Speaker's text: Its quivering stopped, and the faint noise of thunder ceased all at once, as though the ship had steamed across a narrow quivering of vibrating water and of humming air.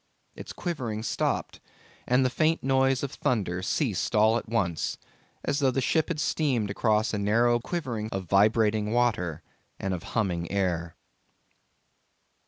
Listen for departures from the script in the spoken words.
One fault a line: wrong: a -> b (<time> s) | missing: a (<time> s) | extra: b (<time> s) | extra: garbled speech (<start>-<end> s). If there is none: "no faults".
no faults